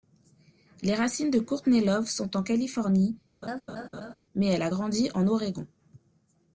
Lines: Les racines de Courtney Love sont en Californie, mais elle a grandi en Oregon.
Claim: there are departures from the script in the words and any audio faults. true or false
true